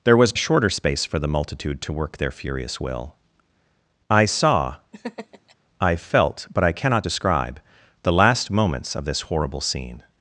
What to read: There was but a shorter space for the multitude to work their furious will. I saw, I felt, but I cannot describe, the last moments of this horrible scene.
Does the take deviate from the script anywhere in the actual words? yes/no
yes